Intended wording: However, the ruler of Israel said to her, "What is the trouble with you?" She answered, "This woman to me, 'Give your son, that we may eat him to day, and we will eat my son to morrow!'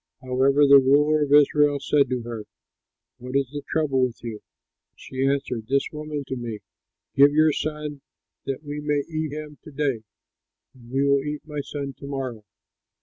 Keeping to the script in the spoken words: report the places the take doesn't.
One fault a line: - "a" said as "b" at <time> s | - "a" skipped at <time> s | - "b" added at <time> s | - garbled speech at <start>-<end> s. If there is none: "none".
none